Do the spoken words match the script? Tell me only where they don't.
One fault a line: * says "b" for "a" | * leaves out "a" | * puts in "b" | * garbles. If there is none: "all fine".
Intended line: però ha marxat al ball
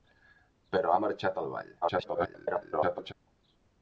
* garbles